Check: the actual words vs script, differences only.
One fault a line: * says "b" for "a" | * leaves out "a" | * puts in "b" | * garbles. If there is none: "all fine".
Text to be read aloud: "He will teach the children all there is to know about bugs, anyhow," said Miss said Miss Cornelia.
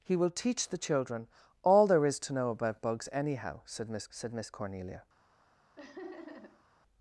all fine